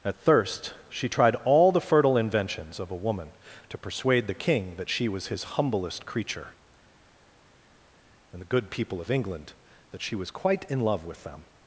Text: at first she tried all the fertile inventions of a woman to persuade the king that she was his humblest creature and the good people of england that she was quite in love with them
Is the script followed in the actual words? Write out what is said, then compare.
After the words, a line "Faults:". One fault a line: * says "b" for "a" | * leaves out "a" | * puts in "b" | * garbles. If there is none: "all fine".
at thirst she tried all the fertile inventions of a woman to persuade the king that she was his humblest creature and the good people of england that she was quite in love with them
Faults:
* says "thirst" for "first"